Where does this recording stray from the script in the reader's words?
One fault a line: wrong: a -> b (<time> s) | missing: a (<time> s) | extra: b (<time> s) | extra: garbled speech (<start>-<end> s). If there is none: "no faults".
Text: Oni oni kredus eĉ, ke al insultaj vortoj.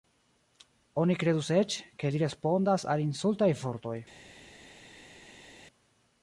missing: oni (1.2 s)
extra: li respondas (2.1 s)